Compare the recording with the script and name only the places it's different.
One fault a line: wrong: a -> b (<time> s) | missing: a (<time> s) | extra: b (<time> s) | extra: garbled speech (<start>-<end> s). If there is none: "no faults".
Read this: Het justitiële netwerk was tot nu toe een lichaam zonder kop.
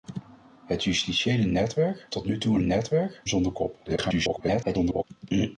missing: was (2.1 s)
wrong: lichaam -> netwerk (2.6 s)
extra: garbled speech (3.8-5.0 s)